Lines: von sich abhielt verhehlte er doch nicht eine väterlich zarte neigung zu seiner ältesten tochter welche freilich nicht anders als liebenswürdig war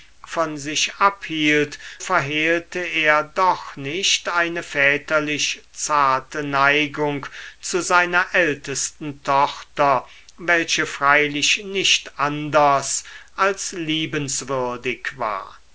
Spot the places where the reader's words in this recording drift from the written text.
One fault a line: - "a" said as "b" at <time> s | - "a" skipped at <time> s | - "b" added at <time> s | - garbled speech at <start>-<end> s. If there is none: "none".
none